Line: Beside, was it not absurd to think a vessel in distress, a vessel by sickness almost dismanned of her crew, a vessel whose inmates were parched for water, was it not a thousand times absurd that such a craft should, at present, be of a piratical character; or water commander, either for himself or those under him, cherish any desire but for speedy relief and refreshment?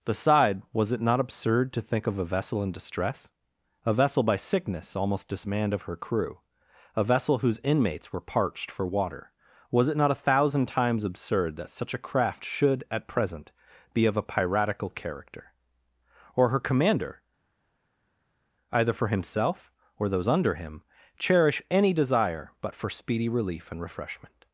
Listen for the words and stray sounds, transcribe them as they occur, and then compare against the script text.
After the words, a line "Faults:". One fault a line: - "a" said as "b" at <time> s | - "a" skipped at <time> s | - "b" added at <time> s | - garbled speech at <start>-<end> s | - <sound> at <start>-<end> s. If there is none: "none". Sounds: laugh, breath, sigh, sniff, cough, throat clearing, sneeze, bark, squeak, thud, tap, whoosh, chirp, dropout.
Beside, was it not absurd to think of a vessel in distress, a vessel by sickness almost dismanned of her crew, a vessel whose inmates were parched for water, was it not a thousand times absurd that such a craft should, at present, be of a piratical character; or her commander, either for himself or those under him, cherish any desire but for speedy relief and refreshment?
Faults:
- "of" added at 2.1 s
- "water" said as "her" at 16.5 s